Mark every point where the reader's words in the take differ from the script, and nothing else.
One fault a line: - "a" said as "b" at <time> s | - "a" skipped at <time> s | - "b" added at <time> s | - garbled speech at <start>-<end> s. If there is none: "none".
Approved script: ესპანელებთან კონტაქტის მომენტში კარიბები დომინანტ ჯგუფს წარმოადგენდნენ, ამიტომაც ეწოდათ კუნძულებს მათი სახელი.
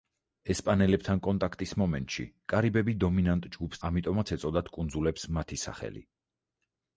- "წარმოადგენდნენ" skipped at 3.8 s